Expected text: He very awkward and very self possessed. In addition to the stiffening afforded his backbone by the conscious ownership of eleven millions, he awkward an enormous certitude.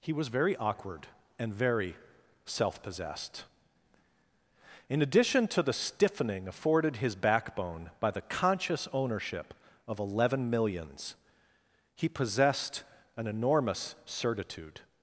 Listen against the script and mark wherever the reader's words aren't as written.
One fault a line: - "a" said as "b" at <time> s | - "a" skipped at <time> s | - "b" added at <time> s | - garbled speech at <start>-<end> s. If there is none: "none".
- "was" added at 0.1 s
- "awkward" said as "possessed" at 12.1 s